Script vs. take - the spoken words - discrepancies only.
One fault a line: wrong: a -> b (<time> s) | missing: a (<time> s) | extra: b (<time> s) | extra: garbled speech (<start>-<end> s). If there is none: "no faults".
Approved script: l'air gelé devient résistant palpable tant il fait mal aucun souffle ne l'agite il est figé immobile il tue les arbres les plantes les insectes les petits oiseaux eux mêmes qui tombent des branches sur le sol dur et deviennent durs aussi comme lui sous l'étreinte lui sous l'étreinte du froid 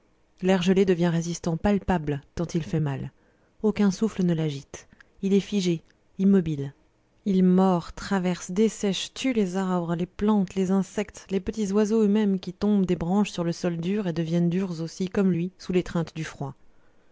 extra: mord traverse dessèche (7.4 s)
missing: lui sous l'étreinte (16.1 s)